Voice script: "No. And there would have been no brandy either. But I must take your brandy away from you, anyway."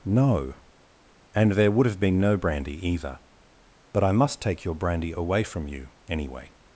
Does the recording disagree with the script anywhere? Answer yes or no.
no